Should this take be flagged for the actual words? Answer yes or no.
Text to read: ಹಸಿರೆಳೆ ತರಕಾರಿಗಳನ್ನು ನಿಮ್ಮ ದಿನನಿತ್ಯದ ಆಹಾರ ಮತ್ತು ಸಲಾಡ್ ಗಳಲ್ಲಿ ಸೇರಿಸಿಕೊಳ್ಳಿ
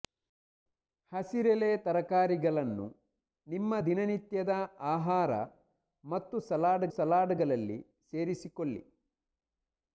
yes